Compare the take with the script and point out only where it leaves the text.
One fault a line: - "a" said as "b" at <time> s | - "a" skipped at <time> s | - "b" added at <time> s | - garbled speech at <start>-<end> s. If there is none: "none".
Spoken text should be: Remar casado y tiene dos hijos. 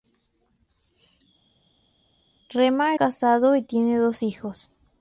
none